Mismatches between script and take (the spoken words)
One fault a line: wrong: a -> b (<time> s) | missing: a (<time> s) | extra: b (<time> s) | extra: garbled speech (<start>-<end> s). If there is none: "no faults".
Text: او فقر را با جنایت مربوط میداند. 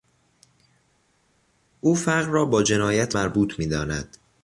no faults